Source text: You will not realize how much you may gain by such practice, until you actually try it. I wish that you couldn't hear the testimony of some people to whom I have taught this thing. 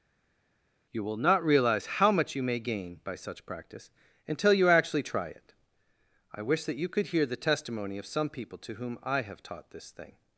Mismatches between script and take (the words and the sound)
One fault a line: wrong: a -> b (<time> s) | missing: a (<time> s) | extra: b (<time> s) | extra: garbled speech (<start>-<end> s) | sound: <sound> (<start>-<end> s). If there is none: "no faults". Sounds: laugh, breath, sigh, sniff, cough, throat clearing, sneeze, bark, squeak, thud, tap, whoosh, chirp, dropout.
wrong: couldn't -> could (6.9 s)